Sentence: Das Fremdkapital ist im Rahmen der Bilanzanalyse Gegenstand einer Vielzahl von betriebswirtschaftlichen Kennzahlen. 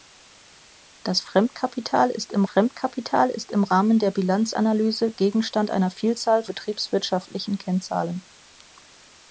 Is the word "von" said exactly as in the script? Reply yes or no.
no